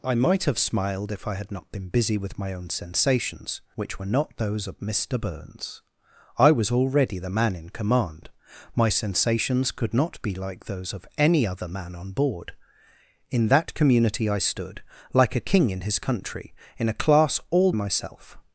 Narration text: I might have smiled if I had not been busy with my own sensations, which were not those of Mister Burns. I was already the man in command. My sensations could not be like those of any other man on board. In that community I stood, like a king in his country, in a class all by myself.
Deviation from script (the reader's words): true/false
true